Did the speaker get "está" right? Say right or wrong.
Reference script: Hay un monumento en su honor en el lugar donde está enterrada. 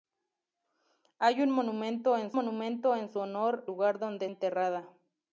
wrong